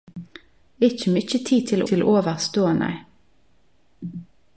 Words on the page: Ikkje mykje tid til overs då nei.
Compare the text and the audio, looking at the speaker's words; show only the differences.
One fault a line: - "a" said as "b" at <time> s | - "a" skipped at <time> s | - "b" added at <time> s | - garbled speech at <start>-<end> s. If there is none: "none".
- "til" added at 1.9 s